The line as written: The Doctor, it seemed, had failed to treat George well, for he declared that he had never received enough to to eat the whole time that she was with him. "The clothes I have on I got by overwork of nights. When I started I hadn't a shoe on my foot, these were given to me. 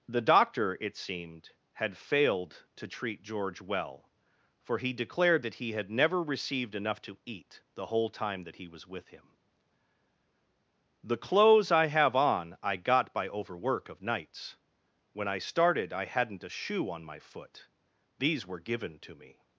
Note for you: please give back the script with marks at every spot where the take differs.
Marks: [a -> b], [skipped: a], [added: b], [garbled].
The Doctor, it seemed, had failed to treat George well, for he declared that he had never received enough to [skipped: to] eat the whole time that [she -> he] was with him. "The clothes I have on I got by overwork of nights. When I started I hadn't a shoe on my foot, these were given to me.